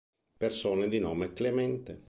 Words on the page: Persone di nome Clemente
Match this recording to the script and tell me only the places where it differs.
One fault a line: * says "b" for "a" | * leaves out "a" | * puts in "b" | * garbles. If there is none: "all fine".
all fine